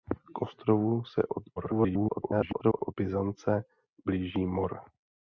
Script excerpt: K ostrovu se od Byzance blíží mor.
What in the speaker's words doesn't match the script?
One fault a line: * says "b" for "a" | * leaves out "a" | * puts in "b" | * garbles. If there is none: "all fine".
* garbles